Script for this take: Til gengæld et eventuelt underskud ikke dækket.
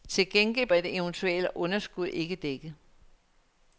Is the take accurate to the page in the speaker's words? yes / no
yes